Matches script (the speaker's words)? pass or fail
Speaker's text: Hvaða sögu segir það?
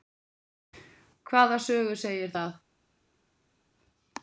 pass